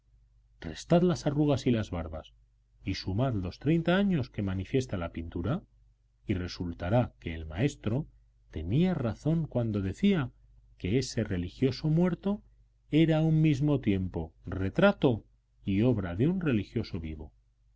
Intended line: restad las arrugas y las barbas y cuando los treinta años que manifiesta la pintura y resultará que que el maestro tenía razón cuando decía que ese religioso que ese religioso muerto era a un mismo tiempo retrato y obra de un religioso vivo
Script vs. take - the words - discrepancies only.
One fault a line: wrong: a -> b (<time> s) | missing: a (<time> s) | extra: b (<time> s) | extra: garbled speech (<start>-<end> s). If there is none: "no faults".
wrong: cuando -> sumad (3.0 s)
missing: que (7.3 s)
missing: que ese religioso (11.9 s)